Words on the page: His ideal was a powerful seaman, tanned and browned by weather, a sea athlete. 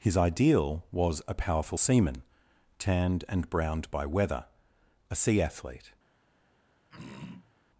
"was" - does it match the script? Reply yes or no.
yes